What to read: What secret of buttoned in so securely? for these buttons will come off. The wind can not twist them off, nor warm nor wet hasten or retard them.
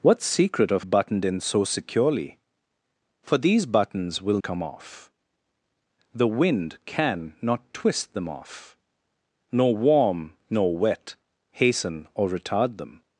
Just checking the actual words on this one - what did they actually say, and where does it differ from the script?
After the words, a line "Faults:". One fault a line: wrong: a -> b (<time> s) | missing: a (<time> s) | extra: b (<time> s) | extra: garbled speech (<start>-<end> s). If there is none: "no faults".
What secret of buttoned in so securely? for these buttons will come off. The wind can not twist them off, nor warm nor wet hasten or retard them.
Faults:
no faults